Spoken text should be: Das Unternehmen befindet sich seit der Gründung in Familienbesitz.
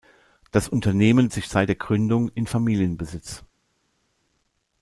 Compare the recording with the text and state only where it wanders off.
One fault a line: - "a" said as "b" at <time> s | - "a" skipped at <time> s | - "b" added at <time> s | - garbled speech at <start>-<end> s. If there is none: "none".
- "befindet" skipped at 1.3 s